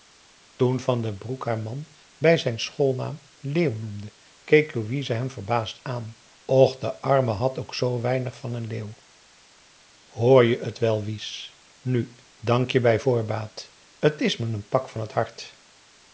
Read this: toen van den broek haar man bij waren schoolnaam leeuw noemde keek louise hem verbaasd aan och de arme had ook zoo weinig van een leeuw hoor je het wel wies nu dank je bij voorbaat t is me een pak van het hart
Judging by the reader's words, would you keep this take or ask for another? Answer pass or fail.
fail